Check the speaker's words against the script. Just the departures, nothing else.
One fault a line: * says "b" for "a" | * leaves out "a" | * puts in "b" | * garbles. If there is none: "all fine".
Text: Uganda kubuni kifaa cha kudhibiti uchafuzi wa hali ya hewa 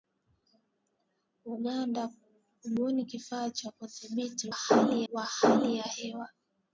* says "hali" for "uchafuzi"